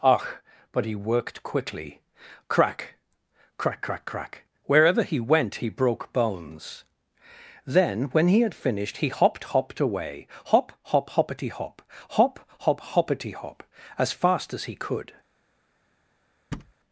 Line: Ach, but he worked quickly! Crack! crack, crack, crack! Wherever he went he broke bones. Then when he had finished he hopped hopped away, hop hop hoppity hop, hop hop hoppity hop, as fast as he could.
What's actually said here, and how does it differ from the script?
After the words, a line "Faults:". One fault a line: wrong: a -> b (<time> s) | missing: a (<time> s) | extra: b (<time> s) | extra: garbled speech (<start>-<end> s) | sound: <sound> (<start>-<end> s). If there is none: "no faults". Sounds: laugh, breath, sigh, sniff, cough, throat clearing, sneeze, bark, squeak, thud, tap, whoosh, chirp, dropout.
Ach, but he worked quickly! Crack! crack, crack, crack! Wherever he went he broke bones. Then when he had finished he hopped hopped away, hop hop hoppity hop, hop hop hoppity hop, as fast as he could.
Faults:
sound: thud (16.5-16.7 s)